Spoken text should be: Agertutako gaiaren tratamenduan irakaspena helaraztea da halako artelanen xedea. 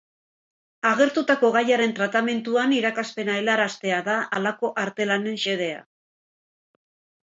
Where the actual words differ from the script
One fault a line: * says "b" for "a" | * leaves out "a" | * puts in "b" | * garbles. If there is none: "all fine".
all fine